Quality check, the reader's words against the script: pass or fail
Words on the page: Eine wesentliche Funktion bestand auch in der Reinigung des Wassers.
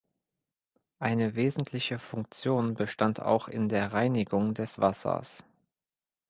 pass